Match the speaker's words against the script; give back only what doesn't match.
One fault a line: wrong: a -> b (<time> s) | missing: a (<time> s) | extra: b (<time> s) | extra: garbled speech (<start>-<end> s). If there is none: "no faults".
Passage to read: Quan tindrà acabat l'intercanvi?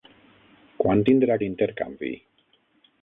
missing: acabat (1.4 s)